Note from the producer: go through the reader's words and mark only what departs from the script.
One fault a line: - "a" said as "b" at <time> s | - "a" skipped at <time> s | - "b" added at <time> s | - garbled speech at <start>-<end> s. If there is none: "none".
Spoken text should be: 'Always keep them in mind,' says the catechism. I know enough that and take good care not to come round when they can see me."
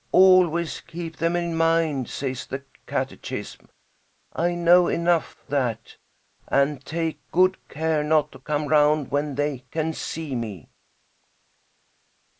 none